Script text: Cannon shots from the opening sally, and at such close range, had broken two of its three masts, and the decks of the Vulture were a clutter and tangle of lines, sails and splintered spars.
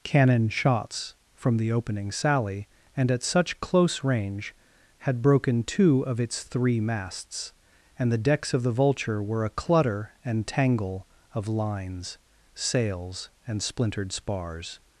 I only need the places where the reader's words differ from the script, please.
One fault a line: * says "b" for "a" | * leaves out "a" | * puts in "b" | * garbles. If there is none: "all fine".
all fine